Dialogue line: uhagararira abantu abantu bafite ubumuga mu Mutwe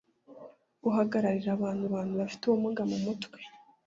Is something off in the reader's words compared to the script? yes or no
no